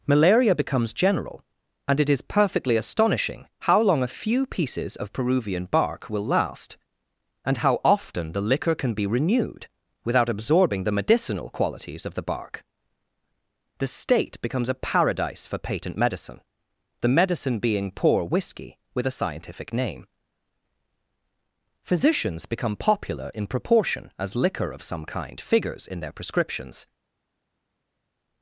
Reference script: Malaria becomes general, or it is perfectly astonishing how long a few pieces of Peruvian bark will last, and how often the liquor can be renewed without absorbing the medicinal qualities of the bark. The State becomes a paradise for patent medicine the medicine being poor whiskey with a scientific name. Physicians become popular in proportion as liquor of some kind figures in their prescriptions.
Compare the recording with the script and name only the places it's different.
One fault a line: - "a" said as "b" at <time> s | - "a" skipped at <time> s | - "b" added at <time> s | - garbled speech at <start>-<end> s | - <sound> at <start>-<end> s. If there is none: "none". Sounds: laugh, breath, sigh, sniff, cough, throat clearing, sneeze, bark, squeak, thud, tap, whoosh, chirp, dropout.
- "or" said as "and" at 1.9 s